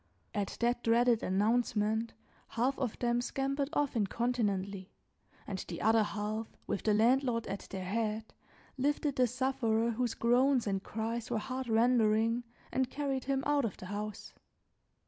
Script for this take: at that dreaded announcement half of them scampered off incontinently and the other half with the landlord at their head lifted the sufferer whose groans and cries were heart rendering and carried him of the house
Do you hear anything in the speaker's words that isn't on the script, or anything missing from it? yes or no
yes